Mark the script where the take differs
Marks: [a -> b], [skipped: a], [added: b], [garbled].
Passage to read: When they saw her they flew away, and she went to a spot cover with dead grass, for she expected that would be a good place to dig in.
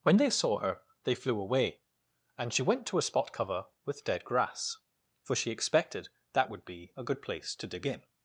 When they saw her they flew away, and she went to a spot cover with dead grass, for she expected that would be a good place to dig in.